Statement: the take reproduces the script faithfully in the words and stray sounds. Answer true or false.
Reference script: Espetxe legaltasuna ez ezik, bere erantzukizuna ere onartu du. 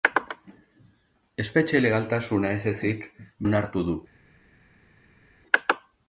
false